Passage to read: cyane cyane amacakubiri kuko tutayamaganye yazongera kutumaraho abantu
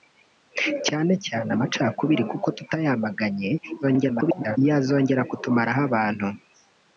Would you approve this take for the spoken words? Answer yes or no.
no